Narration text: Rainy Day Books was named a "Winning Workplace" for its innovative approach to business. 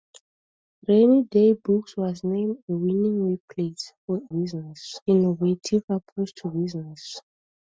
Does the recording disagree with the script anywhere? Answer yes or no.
yes